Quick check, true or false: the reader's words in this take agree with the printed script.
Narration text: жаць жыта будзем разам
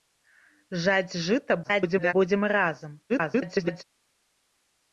false